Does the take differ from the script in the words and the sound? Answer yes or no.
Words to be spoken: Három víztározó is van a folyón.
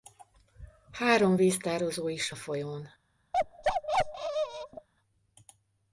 yes